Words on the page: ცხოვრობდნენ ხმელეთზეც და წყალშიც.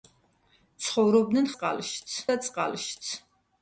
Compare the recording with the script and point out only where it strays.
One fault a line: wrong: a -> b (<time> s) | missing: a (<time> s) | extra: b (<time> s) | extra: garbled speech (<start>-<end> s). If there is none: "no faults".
wrong: ხმელეთზეც -> წყალშიც (1.5 s)